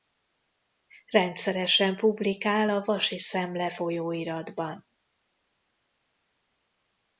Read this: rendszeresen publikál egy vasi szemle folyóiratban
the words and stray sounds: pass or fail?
fail